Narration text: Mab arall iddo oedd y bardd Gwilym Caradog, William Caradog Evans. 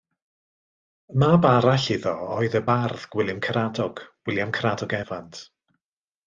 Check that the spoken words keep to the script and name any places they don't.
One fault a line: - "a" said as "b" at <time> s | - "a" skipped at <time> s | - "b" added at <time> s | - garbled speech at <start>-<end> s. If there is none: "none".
none